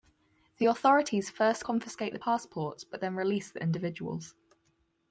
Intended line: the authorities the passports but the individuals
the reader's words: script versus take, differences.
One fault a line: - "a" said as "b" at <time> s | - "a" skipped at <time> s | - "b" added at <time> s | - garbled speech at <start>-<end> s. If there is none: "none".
- "first confiscate" added at 1.3 s
- "then release" added at 3.0 s